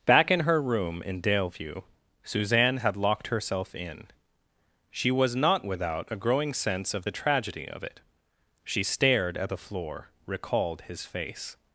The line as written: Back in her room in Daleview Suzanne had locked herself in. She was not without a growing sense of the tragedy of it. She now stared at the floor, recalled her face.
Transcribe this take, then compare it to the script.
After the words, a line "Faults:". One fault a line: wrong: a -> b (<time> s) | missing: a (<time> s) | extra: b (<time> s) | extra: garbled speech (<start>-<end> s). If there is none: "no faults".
Back in her room in Daleview Suzanne had locked herself in. She was not without a growing sense of the tragedy of it. She stared at the floor, recalled his face.
Faults:
missing: now (8.8 s)
wrong: her -> his (10.8 s)